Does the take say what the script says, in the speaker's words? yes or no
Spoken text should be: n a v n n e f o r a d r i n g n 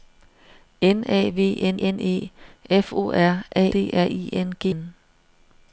yes